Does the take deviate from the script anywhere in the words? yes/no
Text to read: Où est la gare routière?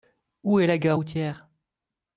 no